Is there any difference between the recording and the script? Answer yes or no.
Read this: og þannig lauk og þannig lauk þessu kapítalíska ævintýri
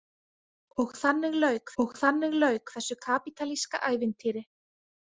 no